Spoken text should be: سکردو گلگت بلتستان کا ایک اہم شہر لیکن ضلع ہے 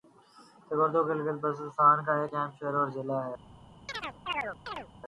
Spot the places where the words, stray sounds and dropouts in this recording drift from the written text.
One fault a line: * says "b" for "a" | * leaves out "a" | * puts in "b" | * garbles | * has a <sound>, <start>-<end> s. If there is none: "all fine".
* says "اور" for "لیکن"
* has a chirp, 3.9-4.9 s